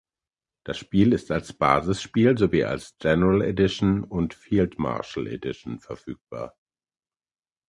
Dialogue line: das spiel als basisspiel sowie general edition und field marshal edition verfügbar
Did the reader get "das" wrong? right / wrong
right